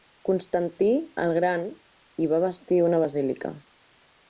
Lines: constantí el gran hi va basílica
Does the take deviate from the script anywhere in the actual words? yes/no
yes